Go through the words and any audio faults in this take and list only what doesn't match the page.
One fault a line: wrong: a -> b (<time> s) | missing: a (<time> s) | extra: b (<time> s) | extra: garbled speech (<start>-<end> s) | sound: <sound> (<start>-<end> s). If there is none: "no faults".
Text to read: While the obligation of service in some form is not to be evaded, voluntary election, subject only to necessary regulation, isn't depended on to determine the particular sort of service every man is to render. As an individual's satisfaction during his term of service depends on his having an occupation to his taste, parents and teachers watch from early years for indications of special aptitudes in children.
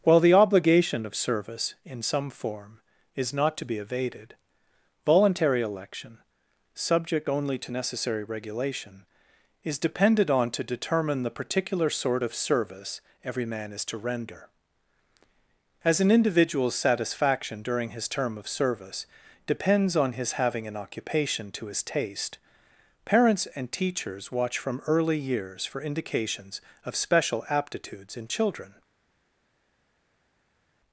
wrong: isn't -> is (9.6 s)